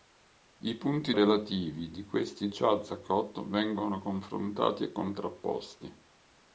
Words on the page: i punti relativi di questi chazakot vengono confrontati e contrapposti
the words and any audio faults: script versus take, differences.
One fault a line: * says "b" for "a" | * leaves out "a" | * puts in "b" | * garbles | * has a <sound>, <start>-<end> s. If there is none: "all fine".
all fine